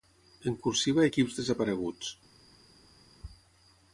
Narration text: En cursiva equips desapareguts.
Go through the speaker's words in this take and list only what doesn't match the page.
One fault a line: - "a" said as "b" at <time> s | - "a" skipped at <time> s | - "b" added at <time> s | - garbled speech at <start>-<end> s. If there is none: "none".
none